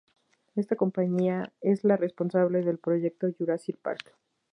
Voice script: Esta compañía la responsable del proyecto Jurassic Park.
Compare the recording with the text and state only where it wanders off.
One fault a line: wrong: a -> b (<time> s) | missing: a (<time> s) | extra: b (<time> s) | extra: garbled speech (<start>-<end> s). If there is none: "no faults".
extra: es (1.6 s)